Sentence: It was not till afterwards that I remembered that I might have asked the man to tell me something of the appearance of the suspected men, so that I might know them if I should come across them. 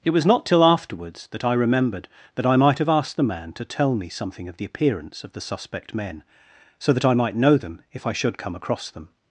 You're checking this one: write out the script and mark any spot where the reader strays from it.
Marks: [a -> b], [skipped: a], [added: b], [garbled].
It was not till afterwards that I remembered that I might have asked the man to tell me something of the appearance of the [suspected -> suspect] men, so that I might know them if I should come across them.